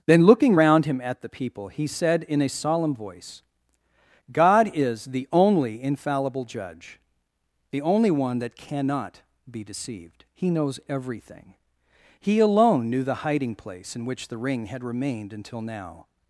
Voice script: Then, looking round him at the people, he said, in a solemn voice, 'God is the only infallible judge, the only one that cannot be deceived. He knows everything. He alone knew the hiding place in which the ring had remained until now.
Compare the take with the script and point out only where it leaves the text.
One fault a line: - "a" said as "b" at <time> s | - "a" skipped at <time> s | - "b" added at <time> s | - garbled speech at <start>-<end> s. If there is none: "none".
none